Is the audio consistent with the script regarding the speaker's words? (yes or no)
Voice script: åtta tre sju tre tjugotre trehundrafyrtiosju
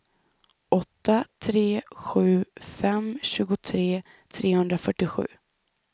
no